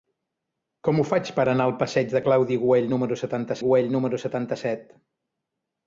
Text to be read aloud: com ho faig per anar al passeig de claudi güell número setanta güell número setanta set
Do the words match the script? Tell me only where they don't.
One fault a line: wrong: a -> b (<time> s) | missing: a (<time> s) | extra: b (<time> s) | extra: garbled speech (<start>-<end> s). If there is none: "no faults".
no faults